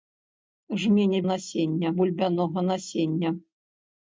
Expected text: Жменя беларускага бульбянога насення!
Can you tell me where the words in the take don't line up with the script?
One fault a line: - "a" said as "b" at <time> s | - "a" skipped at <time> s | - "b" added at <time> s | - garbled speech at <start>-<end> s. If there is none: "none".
- "беларускага" said as "насення" at 1.3 s